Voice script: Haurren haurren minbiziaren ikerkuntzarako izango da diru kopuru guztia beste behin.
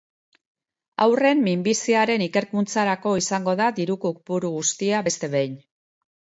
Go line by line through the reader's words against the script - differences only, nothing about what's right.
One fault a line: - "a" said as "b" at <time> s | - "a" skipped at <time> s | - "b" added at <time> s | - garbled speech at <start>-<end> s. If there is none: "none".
- "haurren" skipped at 1.4 s